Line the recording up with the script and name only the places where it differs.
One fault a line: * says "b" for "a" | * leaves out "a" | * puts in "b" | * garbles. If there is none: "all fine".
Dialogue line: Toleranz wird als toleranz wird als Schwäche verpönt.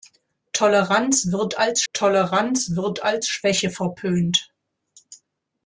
all fine